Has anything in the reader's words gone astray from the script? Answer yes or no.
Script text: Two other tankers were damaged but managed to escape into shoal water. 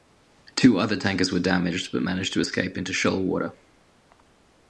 no